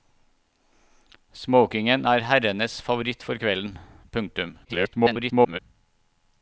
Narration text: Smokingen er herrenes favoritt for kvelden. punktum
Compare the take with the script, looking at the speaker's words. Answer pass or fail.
fail